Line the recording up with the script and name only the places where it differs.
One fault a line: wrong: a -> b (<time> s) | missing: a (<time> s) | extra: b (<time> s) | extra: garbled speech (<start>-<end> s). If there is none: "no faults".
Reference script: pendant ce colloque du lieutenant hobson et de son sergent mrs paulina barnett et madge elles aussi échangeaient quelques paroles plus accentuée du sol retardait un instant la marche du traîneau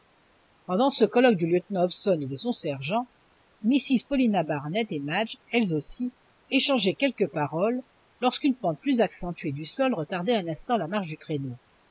extra: lorsqu'une pente (8.2 s)